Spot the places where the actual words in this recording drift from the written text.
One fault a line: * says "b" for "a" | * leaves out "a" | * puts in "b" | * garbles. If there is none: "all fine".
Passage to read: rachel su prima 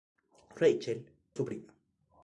all fine